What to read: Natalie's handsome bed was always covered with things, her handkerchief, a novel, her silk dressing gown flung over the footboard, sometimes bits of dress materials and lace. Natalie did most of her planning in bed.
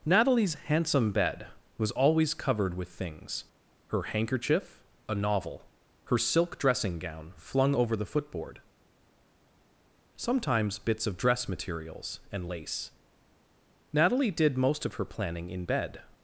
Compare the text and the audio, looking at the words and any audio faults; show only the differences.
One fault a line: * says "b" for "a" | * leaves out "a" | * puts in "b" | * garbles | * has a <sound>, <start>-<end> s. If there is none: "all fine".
all fine